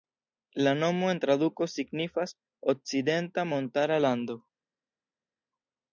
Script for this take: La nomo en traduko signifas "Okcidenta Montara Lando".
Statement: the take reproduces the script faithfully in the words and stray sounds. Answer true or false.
true